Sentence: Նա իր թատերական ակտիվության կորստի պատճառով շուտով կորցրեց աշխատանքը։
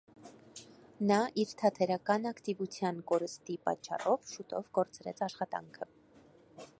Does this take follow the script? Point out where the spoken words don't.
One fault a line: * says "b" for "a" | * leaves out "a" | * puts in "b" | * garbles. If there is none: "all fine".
all fine